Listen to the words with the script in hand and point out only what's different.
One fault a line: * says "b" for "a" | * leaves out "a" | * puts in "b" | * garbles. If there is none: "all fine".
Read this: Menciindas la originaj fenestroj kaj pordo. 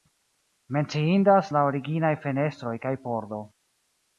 all fine